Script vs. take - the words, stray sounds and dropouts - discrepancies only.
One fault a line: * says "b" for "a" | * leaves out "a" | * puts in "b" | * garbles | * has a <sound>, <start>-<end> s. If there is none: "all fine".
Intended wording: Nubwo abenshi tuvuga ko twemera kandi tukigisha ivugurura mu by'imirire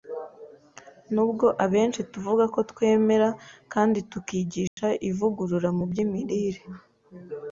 * has a dropout, 4.7-4.8 s